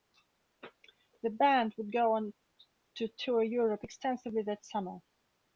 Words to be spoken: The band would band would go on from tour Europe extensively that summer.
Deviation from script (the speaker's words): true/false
true